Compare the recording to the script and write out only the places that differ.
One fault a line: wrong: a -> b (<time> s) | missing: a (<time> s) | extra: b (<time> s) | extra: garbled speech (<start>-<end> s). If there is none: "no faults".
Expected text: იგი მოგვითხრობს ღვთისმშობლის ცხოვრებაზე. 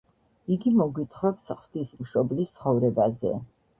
no faults